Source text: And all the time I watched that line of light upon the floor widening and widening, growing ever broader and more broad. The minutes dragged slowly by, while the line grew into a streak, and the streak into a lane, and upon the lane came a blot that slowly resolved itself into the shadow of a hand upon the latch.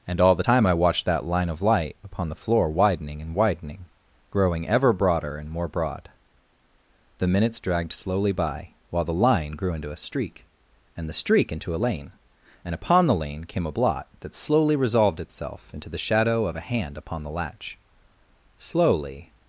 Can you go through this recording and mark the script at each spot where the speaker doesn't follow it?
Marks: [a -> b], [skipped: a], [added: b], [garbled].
And all the time I watched that line of light upon the floor widening and widening, growing ever broader and more broad. The minutes dragged slowly by, while the line grew into a streak, and the streak into a lane, and upon the lane came a blot that slowly resolved itself into the shadow of a hand upon the latch. [added: Slowly]